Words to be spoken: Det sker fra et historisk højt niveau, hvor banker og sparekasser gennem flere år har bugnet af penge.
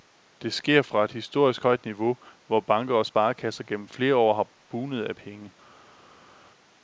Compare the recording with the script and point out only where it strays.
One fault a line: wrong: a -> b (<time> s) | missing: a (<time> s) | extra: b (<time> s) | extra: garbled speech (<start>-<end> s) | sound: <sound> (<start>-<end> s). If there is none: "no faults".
no faults